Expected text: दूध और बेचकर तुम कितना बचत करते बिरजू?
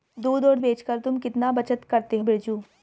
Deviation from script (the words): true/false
false